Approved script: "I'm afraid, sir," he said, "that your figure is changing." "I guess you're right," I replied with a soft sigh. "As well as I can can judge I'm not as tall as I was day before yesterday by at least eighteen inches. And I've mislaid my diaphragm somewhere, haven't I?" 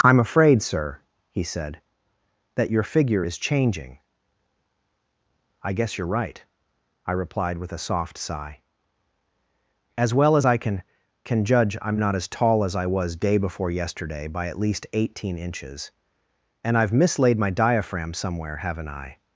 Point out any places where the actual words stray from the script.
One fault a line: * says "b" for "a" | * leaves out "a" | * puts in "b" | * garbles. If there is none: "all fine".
all fine